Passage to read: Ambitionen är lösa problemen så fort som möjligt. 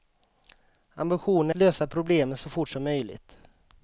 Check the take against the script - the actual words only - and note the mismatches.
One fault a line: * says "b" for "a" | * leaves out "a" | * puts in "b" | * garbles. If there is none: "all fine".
all fine